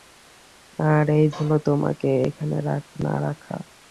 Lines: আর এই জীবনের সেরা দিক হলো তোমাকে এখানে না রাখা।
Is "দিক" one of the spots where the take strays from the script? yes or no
yes